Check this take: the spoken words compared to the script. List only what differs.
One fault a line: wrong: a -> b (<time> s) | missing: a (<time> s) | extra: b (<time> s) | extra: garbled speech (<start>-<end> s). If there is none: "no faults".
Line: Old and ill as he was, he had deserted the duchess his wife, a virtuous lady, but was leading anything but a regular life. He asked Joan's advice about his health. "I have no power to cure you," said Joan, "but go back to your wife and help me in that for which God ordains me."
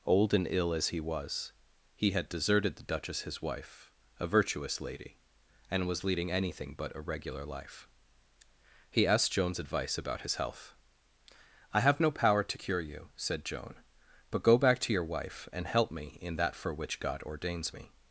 wrong: but -> and (5.7 s)